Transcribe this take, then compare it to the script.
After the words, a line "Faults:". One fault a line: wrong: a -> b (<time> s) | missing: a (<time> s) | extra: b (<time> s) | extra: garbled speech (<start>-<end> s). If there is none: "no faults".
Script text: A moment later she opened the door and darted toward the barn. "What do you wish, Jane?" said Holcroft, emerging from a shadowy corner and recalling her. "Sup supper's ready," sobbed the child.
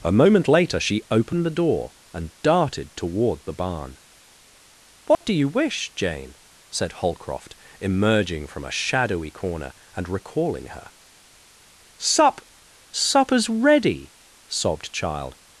A moment later she opened the door and darted toward the barn. "What do you wish, Jane?" said Holcroft, emerging from a shadowy corner and recalling her. "Sup supper's ready," sobbed child.
Faults:
missing: the (14.9 s)